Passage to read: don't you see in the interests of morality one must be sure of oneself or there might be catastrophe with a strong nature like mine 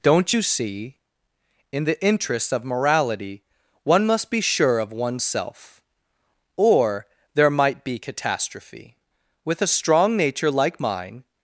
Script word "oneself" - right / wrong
right